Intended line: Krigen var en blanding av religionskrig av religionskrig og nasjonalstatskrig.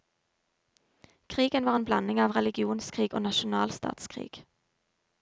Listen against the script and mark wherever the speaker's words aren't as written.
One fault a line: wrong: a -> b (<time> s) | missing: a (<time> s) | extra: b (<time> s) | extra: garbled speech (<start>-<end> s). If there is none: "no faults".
missing: av religionskrig (3.2 s)